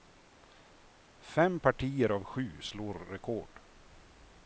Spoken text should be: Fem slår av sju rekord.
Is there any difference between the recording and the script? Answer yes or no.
yes